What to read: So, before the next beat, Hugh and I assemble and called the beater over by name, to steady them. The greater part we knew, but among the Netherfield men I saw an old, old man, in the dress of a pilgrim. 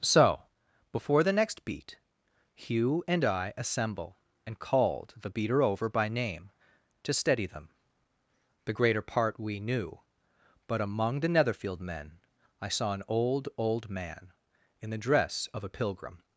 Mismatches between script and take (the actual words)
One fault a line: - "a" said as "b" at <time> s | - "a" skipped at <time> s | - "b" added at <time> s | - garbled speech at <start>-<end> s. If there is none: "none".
none